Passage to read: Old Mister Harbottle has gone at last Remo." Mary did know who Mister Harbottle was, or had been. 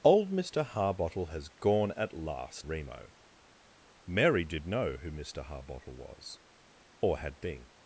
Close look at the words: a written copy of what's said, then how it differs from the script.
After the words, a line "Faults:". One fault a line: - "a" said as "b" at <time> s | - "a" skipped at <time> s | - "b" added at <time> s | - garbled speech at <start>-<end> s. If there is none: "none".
Old Mister Harbottle has gone at last Remo." Mary did know who Mister Harbottle was, or had been.
Faults:
none